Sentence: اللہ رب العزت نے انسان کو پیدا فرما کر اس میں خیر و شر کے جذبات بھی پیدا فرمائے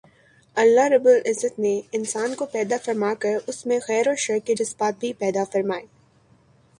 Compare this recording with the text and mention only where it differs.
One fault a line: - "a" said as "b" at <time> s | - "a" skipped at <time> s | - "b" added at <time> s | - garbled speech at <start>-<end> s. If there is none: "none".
none